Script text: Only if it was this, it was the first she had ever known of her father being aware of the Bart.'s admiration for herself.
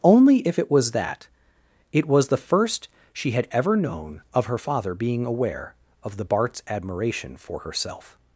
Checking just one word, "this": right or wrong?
wrong